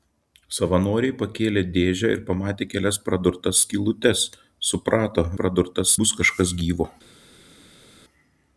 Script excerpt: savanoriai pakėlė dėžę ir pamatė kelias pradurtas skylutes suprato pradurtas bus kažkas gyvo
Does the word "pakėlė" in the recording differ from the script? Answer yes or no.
no